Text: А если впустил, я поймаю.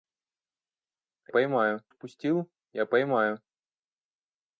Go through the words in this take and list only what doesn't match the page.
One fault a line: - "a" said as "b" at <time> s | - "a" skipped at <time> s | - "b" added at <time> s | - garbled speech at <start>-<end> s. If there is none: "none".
- "если" said as "поймаю" at 1.3 s